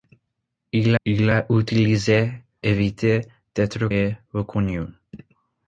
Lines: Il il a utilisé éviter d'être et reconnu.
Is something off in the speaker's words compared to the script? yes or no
no